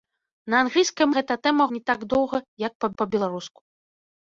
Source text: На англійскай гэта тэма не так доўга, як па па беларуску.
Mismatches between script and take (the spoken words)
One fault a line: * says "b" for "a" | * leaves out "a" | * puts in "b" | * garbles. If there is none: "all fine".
all fine